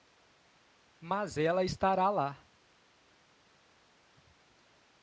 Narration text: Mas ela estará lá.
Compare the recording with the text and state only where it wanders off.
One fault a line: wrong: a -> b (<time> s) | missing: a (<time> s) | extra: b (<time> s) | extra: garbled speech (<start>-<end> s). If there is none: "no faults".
no faults